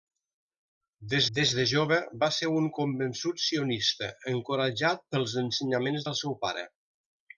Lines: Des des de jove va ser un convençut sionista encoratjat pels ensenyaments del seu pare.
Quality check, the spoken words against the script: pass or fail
pass